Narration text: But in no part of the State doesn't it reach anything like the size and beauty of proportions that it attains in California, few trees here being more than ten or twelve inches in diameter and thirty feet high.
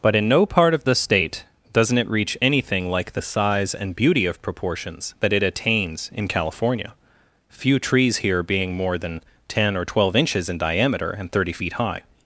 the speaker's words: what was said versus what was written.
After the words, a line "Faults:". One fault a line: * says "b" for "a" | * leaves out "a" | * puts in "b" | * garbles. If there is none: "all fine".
But in no part of the State doesn't it reach anything like the size and beauty of proportions that it attains in California, few trees here being more than ten or twelve inches in diameter and thirty feet high.
Faults:
all fine